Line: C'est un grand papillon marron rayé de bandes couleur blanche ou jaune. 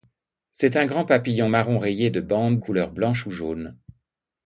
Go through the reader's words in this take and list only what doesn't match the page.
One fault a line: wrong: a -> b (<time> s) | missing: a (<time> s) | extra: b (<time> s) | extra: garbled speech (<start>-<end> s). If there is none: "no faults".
no faults